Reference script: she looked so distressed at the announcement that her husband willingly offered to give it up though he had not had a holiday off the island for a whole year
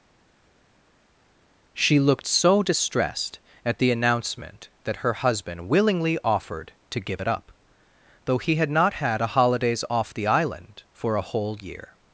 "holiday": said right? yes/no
no